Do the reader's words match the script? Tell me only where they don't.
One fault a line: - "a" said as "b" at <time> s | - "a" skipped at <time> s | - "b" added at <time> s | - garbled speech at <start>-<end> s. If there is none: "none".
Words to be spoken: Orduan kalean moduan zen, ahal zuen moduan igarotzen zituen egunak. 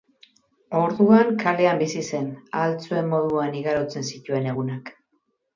- "moduan" said as "bizi" at 1.8 s